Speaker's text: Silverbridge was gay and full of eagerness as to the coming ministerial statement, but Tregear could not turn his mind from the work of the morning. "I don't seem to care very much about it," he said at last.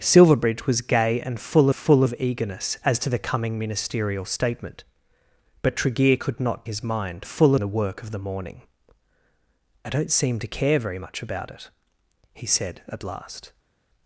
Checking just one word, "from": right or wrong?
wrong